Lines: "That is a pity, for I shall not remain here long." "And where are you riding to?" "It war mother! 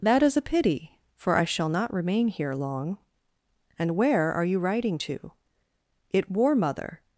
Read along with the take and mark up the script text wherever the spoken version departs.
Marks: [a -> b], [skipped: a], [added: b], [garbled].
"That is a pity, for I shall not remain here long." "And where are you riding to?" "It war mother!